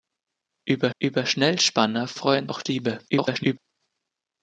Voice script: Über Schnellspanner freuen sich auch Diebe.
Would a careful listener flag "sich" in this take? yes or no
yes